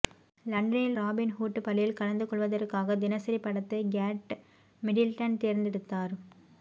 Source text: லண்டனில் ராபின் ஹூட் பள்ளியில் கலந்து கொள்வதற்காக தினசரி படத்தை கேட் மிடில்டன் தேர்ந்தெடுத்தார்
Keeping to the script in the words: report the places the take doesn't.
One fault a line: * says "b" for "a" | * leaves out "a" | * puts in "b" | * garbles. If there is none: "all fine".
all fine